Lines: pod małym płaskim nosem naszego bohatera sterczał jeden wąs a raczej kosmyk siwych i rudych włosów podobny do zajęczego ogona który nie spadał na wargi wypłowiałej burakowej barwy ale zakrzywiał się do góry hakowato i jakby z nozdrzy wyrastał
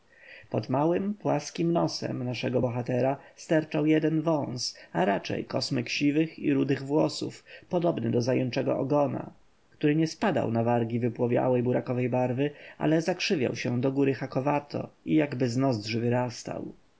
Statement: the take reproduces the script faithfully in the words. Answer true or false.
true